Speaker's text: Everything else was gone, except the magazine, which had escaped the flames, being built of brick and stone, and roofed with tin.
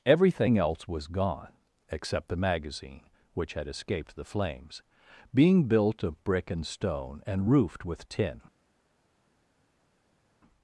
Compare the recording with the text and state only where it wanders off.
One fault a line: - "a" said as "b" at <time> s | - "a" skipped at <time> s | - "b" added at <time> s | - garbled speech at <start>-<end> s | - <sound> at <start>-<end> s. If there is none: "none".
none